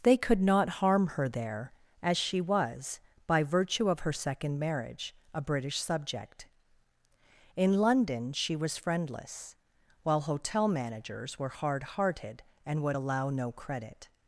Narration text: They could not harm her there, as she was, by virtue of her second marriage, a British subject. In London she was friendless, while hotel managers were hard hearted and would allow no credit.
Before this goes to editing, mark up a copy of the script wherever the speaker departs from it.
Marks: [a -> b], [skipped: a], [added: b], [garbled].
They could not harm her there, as she was, by virtue of her second marriage, a British subject. In London she was friendless, while hotel managers were hard hearted and would allow no credit.